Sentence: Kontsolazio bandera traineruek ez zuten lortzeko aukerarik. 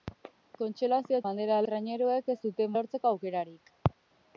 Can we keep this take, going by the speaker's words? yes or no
yes